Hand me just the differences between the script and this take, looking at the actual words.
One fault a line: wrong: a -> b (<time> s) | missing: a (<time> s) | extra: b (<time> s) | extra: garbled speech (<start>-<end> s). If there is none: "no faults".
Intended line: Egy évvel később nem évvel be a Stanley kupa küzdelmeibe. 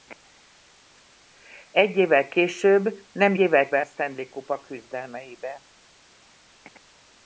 no faults